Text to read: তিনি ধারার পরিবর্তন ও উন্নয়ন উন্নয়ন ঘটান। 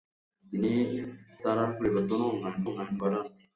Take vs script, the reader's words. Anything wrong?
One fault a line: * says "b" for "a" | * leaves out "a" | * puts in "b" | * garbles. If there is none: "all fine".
all fine